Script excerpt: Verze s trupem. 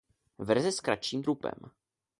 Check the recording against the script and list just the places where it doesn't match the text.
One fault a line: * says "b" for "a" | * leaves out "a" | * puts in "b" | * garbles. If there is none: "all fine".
* puts in "kratším"